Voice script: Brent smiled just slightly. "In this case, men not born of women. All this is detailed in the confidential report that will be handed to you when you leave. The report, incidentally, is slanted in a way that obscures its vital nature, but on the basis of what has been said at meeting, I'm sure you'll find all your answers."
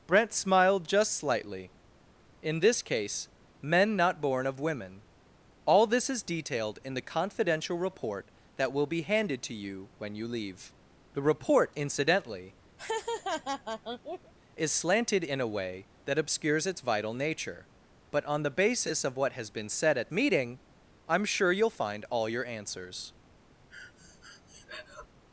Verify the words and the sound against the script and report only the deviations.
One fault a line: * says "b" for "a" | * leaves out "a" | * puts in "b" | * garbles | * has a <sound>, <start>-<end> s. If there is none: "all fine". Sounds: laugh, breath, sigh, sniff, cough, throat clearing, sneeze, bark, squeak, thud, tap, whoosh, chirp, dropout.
* has a laugh, 12.8-14.3 s
* has a breath, 23.7-25.1 s